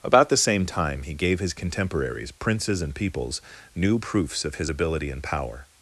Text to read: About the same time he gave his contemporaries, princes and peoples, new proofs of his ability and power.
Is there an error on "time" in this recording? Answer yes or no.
no